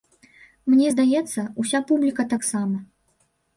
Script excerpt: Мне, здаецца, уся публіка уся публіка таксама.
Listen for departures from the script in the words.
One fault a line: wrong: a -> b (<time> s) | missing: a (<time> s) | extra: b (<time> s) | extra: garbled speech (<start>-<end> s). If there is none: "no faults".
missing: уся публіка (2.3 s)